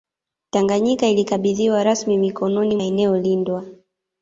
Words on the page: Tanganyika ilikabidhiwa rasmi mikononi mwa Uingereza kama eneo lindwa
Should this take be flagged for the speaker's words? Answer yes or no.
yes